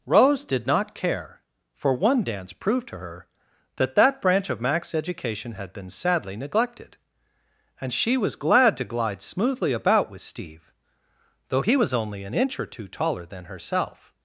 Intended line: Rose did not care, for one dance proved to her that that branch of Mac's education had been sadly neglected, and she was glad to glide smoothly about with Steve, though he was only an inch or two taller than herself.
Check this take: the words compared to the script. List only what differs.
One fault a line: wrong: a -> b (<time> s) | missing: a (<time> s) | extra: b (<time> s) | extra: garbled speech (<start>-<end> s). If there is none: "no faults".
no faults